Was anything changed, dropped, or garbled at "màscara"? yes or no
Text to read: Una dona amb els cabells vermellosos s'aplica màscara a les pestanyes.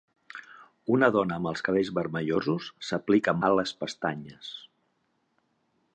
yes